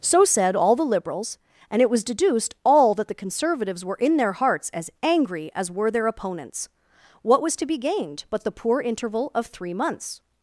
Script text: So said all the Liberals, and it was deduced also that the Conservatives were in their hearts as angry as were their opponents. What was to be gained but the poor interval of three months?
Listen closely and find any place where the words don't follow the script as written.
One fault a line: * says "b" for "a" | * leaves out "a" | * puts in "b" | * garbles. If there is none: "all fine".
* says "all" for "also"